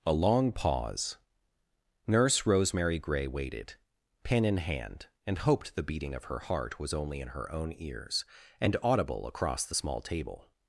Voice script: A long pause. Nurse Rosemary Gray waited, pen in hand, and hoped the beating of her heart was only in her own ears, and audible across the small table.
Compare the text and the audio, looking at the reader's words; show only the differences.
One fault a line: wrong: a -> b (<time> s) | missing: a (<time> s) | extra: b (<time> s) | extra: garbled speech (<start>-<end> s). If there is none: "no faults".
no faults